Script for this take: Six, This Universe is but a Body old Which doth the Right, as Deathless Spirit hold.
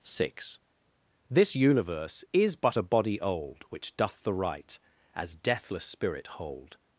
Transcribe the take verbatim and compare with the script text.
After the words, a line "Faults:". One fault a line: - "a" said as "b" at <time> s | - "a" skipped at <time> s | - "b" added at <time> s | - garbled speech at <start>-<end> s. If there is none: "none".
Six, This Universe is but a Body old Which doth the Right, as Deathless Spirit hold.
Faults:
none